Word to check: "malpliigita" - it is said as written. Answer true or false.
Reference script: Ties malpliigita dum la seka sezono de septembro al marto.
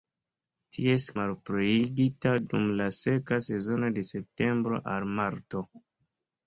true